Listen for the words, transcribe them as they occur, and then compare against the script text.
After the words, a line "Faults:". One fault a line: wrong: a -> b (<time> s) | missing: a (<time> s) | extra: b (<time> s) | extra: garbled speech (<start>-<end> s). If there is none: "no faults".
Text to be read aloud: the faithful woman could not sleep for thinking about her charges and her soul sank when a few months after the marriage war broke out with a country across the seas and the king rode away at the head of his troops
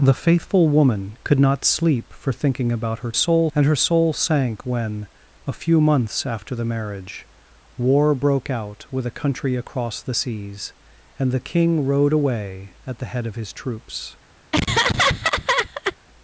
the faithful woman could not sleep for thinking about her soul and her soul sank when a few months after the marriage war broke out with a country across the seas and the king rode away at the head of his troops
Faults:
wrong: charges -> soul (3.1 s)